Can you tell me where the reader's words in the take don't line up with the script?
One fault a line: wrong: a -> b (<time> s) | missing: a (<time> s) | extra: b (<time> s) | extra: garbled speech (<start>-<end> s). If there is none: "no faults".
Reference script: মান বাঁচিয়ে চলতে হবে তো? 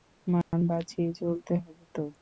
no faults